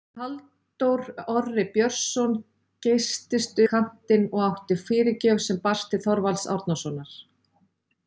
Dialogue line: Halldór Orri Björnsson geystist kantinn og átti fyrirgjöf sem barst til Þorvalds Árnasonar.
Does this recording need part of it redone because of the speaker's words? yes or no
no